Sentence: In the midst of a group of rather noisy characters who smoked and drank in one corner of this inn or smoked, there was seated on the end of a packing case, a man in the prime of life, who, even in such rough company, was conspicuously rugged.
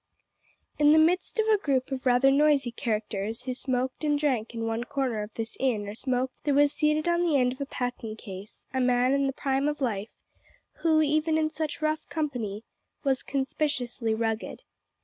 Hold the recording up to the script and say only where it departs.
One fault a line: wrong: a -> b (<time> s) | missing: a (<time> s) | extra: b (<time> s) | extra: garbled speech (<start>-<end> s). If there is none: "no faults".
no faults